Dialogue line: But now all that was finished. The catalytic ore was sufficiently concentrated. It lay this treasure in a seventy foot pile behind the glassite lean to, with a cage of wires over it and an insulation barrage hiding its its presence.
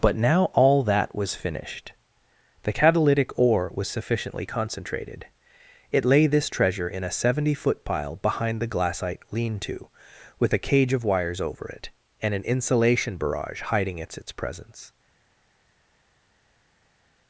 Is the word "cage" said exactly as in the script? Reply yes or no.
yes